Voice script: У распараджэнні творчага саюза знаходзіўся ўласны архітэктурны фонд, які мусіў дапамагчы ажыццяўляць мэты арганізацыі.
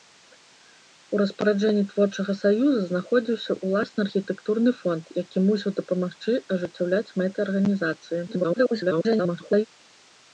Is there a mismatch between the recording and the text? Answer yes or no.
yes